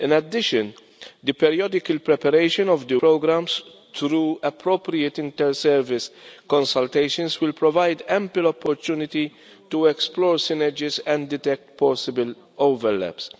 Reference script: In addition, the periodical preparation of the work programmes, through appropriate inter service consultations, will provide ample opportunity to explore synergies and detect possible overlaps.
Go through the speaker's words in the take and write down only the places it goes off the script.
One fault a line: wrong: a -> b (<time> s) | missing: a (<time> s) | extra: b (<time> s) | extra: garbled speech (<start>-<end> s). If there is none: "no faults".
missing: work (3.0 s)